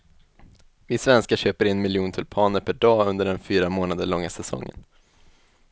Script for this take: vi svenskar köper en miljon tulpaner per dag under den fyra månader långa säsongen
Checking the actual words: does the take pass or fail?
pass